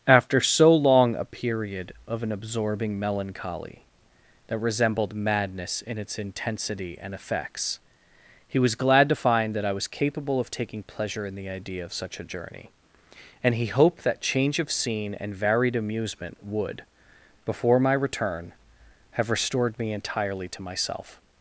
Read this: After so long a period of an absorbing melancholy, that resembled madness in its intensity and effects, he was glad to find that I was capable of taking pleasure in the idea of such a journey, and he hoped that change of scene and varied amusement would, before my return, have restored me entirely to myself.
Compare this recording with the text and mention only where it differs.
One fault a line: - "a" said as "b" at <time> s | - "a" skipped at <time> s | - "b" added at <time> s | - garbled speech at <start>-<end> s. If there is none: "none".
none